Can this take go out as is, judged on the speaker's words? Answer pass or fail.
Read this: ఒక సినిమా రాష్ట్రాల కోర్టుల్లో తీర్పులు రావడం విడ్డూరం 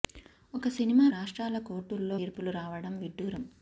pass